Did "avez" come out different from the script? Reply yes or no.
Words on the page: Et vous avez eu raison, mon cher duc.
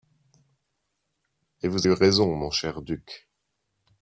yes